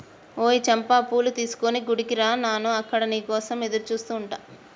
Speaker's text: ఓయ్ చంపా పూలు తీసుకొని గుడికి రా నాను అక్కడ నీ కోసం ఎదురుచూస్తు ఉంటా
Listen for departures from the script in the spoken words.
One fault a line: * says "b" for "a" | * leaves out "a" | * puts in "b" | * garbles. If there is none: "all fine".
all fine